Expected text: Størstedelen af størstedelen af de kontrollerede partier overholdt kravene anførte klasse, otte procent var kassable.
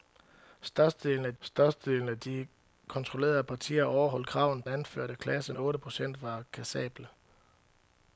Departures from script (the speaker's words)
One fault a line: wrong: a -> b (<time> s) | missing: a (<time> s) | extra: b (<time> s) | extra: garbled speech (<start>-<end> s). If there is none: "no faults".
no faults